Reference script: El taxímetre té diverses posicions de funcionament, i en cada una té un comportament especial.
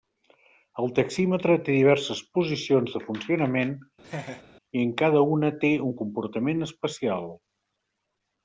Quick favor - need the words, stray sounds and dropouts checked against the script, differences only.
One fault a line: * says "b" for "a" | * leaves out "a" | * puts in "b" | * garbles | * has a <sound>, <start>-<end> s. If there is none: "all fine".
* has a laugh, 4.0-4.4 s